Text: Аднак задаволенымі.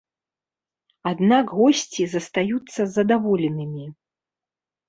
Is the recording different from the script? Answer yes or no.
yes